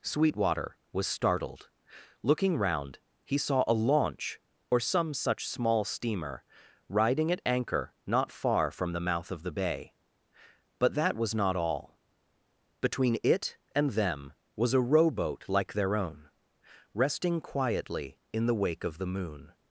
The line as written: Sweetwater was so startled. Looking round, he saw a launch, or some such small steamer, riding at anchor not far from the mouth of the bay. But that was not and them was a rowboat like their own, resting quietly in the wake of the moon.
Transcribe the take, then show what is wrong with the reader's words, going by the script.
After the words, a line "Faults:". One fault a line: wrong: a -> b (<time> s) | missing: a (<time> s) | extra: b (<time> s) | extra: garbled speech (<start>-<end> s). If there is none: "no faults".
Sweetwater was startled. Looking round, he saw a launch, or some such small steamer, riding at anchor not far from the mouth of the bay. But that was not all. Between it and them was a rowboat like their own, resting quietly in the wake of the moon.
Faults:
missing: so (1.1 s)
extra: all Between it (11.6 s)